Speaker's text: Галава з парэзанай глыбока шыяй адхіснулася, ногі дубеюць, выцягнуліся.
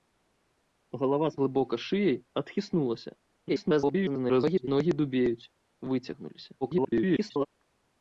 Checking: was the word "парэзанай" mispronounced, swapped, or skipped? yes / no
yes